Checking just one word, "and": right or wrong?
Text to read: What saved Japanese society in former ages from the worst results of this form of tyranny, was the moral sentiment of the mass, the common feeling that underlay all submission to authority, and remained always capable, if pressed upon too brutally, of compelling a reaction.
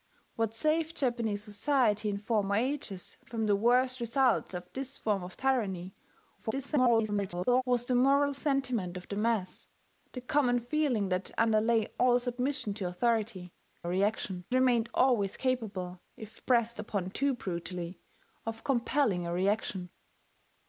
wrong